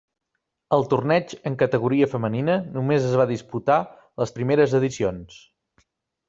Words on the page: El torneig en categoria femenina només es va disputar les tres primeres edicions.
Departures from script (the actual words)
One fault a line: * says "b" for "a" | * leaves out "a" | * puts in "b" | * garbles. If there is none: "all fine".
* leaves out "tres"